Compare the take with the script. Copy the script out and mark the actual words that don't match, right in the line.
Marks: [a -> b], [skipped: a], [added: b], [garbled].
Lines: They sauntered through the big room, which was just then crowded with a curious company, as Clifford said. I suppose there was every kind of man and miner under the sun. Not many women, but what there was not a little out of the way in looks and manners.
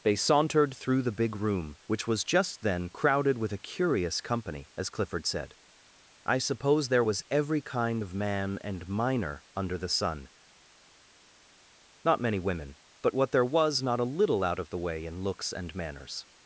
They sauntered through the big room, which was just then crowded with a curious company, as Clifford said. I suppose there was every kind of man and miner under the sun. Not many women, but what there was not a little out of the way in looks and manners.